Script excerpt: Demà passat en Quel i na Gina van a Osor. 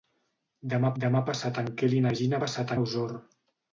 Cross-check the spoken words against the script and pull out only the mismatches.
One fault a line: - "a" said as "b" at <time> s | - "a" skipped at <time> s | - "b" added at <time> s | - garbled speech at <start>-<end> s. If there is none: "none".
- "demà" added at 1.0 s
- "van" said as "passat" at 2.4 s